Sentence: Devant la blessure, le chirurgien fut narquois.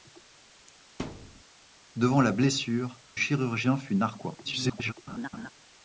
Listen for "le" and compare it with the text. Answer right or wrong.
wrong